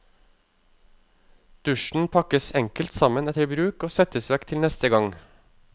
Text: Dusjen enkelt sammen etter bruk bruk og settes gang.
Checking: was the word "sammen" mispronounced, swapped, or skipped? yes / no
no